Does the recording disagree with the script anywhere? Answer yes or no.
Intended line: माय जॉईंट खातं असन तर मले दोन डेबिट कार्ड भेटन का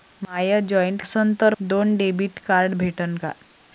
yes